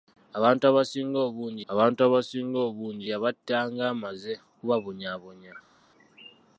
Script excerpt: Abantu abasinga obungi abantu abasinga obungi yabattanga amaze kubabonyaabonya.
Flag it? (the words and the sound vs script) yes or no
no